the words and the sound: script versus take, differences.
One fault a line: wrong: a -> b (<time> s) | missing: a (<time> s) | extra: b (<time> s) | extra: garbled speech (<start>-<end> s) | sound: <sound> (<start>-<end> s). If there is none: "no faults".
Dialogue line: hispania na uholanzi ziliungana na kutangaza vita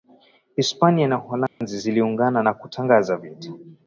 sound: dropout (1.5-1.6 s)